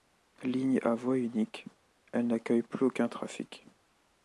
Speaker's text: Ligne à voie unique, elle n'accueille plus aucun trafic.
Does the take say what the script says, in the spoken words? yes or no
yes